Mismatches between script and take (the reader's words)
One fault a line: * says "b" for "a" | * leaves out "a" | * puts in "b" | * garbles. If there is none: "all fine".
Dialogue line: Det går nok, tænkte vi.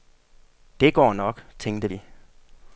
all fine